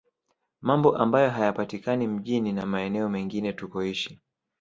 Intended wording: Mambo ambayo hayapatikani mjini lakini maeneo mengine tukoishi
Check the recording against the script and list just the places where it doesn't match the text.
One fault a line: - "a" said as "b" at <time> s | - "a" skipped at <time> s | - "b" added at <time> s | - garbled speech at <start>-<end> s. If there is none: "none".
- "lakini" said as "na" at 2.5 s